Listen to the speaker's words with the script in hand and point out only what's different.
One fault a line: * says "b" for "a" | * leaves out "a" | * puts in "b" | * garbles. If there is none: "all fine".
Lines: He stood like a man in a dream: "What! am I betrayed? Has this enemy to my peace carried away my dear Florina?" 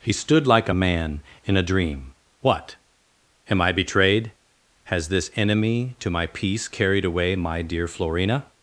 all fine